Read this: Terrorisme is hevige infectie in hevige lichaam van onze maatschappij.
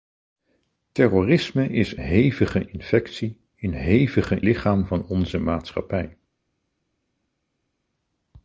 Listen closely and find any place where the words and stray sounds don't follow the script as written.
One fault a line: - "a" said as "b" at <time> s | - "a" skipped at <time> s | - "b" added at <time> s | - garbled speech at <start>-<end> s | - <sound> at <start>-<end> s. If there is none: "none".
none